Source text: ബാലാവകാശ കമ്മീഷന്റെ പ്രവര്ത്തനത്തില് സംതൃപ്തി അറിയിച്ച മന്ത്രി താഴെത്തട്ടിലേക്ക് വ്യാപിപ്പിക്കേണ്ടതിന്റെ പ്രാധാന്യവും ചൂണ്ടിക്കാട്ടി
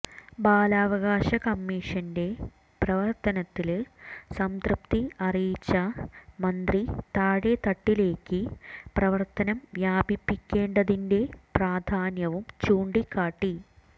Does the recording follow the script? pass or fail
fail